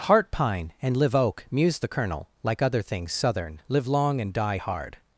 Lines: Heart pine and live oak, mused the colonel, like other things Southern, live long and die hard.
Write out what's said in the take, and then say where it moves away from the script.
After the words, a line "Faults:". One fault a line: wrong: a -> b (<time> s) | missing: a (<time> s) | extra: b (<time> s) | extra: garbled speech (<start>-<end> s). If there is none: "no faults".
Heart pine and live oak, mused the colonel, like other things Southern, live long and die hard.
Faults:
no faults